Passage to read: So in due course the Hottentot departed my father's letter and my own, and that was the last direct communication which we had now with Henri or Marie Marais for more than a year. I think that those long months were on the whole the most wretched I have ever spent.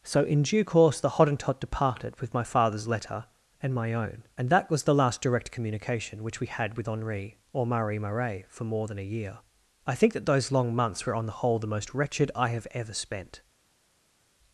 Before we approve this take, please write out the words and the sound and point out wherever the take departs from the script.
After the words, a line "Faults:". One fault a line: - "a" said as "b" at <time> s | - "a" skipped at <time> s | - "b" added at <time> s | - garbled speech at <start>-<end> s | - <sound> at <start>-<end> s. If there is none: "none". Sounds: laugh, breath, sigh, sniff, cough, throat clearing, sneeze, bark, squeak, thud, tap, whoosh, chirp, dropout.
So in due course the Hottentot departed with my father's letter and my own, and that was the last direct communication which we had with Henri or Marie Marais for more than a year. I think that those long months were on the whole the most wretched I have ever spent.
Faults:
- "with" added at 2.2 s
- "now" skipped at 6.8 s